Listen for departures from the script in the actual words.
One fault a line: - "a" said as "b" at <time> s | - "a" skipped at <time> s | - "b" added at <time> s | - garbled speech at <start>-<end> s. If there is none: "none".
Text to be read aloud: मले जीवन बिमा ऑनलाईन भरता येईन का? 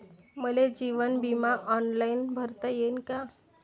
none